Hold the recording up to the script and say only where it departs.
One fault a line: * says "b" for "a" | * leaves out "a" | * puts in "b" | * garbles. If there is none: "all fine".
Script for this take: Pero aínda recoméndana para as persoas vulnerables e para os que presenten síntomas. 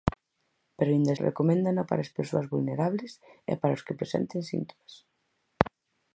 all fine